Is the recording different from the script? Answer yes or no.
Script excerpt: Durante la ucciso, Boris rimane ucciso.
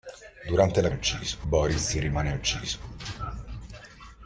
no